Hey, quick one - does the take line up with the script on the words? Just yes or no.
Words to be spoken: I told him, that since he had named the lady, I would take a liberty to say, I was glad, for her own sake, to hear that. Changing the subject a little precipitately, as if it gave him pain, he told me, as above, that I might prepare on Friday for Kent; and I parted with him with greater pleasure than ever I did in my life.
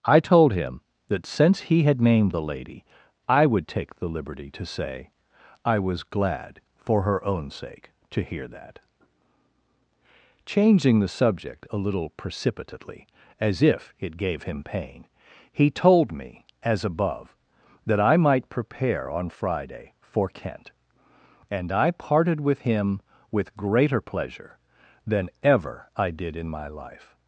no